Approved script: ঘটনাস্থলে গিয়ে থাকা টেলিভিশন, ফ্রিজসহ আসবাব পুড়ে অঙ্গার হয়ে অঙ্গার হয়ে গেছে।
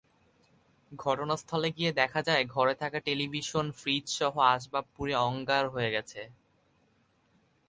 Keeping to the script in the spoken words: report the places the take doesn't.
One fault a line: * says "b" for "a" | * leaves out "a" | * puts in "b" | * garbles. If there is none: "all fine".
* puts in "দেখা যায় ঘরে"
* leaves out "অঙ্গার হয়ে"